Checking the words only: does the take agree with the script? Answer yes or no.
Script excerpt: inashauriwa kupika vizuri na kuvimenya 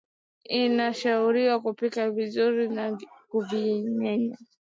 yes